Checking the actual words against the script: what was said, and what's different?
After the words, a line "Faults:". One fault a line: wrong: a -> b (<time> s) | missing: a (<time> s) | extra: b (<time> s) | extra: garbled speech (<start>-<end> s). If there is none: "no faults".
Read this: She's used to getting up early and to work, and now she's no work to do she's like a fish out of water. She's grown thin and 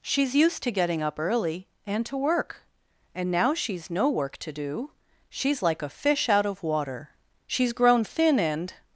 She's used to getting up early and to work, and now she's no work to do she's like a fish out of water. She's grown thin and
Faults:
no faults